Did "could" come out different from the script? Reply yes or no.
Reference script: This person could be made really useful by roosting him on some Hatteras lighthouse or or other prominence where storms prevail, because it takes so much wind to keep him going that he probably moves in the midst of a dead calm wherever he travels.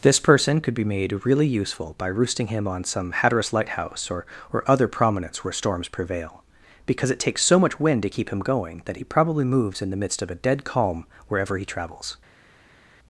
no